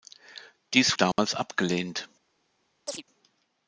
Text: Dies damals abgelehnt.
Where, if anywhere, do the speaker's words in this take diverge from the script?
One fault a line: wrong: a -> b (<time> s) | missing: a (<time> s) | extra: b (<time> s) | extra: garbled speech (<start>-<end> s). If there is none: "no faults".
no faults